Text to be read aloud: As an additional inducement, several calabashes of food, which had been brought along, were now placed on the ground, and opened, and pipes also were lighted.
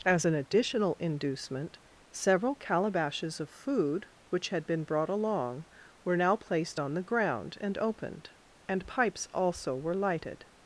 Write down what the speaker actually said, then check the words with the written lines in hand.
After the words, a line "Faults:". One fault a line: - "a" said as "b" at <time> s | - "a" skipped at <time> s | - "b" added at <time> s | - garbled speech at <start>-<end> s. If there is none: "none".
As an additional inducement, several calabashes of food, which had been brought along, were now placed on the ground, and opened, and pipes also were lighted.
Faults:
none